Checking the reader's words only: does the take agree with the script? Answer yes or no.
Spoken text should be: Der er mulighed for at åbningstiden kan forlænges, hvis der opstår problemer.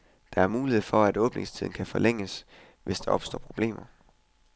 yes